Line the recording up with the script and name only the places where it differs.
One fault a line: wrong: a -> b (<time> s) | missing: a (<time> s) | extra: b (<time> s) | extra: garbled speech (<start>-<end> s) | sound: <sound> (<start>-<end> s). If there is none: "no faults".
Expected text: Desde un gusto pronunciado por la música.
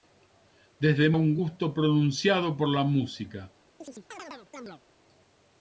sound: chirp (3.8-4.8 s)